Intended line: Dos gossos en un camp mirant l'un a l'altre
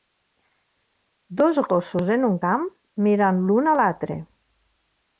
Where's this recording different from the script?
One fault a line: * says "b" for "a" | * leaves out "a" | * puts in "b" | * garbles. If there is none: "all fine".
all fine